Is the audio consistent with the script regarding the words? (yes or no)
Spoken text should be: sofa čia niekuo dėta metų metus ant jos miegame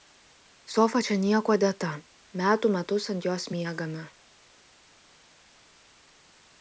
yes